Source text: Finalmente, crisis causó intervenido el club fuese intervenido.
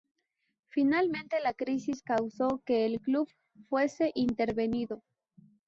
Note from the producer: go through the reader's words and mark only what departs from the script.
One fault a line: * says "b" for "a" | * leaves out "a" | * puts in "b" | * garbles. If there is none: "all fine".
* puts in "la"
* says "que" for "intervenido"